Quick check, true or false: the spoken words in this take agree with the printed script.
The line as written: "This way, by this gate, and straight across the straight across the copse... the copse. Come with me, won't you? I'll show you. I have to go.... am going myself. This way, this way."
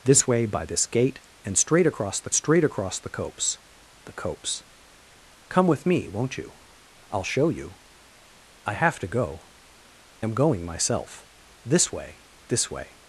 true